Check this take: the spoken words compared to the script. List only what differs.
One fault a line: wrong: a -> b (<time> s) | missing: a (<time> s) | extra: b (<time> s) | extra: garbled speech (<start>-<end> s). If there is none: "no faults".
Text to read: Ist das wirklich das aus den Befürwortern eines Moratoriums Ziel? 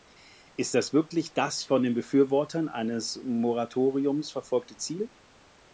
wrong: aus -> von (1.6 s)
extra: verfolgte (4.3 s)